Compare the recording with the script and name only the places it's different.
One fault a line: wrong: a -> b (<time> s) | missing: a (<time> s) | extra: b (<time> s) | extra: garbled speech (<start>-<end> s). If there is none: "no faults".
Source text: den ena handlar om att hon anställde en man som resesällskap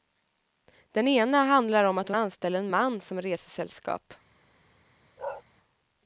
no faults